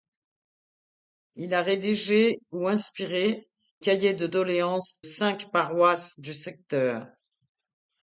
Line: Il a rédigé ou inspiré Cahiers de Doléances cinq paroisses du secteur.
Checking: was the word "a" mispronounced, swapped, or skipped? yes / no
no